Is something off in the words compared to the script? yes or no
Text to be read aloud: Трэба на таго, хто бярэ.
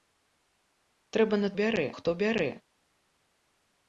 yes